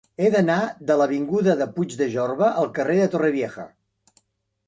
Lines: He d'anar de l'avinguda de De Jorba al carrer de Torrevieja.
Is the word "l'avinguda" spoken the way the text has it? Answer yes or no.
yes